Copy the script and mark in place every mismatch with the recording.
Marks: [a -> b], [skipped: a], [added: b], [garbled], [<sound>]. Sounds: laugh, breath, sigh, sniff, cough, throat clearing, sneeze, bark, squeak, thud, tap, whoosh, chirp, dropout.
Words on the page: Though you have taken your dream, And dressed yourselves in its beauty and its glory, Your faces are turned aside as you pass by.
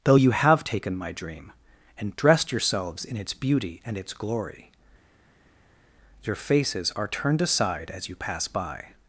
Though you have taken [your -> my] dream, And dressed yourselves in its beauty and its glory, Your faces are turned aside as you pass by.